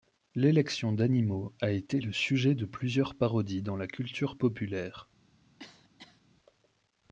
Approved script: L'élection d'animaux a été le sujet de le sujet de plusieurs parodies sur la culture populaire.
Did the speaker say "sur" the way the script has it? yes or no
no